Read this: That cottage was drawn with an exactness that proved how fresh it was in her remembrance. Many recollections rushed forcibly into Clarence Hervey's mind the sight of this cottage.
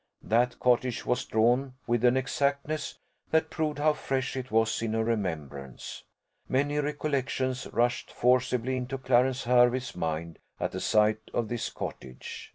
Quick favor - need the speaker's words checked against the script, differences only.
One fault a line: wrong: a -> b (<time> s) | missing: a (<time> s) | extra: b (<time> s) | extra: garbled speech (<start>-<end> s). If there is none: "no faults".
extra: at (10.6 s)